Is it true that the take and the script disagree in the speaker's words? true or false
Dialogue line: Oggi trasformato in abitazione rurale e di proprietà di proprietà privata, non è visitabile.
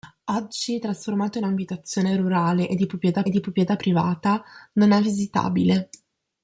false